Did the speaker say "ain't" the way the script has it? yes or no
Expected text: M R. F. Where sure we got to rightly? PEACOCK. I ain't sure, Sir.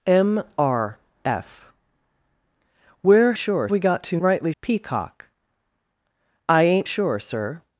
yes